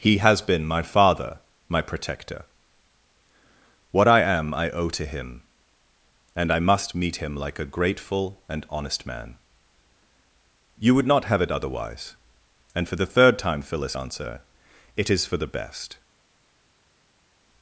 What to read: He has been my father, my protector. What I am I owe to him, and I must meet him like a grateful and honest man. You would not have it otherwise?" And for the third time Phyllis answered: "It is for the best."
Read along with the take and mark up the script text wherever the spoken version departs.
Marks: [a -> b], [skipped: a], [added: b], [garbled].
He has been my father, my protector. What I am I owe to him, and I must meet him like a grateful and honest man. You would not have it otherwise?" And for the third time Phyllis [answered: -> answer] "It is for the best."